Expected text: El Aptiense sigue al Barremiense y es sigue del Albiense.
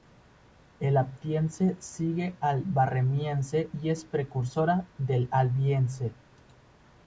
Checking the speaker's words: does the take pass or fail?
fail